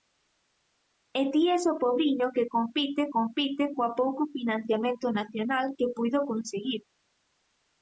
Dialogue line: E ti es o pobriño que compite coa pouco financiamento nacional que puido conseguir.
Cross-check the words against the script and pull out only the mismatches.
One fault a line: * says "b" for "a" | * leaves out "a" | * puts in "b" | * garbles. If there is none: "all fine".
* puts in "compite"